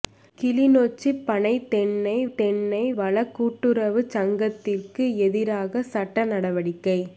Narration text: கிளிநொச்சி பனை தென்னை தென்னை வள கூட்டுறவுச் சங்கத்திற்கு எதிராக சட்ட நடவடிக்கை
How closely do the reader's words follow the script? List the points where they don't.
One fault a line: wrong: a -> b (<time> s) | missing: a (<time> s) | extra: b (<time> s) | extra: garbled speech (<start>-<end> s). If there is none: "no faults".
no faults